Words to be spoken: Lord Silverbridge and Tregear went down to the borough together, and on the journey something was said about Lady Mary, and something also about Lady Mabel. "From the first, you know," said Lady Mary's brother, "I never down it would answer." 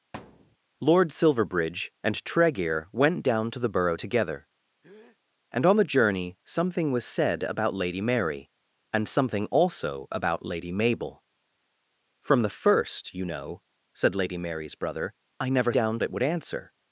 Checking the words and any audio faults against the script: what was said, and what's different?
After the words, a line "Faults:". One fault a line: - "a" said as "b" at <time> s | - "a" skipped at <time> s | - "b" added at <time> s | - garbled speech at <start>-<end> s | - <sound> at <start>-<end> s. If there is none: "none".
Lord Silverbridge and Tregear went down to the borough together, and on the journey something was said about Lady Mary, and something also about Lady Mabel. "From the first, you know," said Lady Mary's brother, "I never down it would answer."
Faults:
- thud at 0.1-0.6 s
- breath at 4.8-5.2 s